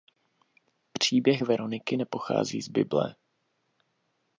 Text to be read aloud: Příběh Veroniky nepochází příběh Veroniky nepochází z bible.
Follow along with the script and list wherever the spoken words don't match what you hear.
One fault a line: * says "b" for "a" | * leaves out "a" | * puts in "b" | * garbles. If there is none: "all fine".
* leaves out "příběh Veroniky nepochází"